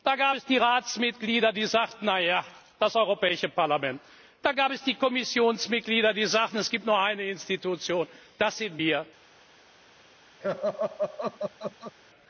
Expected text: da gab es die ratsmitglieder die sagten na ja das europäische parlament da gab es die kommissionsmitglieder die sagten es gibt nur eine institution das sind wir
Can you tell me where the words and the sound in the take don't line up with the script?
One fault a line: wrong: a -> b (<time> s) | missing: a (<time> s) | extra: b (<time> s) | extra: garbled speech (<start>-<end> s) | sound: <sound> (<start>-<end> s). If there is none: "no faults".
sound: laugh (10.4-11.9 s)